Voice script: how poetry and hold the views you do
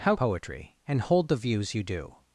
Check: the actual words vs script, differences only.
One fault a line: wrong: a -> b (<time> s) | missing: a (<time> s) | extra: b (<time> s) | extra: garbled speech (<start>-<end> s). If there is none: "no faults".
no faults